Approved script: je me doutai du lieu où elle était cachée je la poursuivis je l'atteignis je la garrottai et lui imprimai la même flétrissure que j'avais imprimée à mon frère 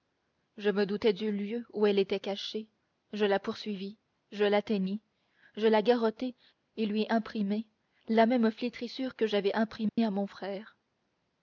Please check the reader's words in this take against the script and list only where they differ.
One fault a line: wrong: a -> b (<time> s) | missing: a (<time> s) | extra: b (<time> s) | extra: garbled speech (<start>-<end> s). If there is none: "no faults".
no faults